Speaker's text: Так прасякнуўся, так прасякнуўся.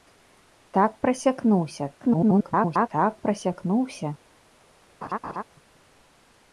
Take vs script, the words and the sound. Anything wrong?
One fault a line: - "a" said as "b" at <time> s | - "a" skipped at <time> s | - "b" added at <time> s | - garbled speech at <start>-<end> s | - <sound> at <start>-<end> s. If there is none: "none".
- garbled speech at 2.0-2.9 s
- laugh at 5.0-5.4 s